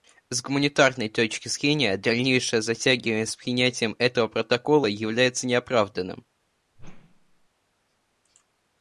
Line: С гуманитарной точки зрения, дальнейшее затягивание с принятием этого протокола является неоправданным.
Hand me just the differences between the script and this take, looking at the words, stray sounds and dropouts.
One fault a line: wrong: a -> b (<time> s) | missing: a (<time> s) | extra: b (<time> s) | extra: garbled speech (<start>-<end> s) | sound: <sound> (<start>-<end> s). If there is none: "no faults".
sound: whoosh (6.8-7.5 s)